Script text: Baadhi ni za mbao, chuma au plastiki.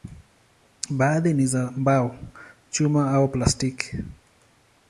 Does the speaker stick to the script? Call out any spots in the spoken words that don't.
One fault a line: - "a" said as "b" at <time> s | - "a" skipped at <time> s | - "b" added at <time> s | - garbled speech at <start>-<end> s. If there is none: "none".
none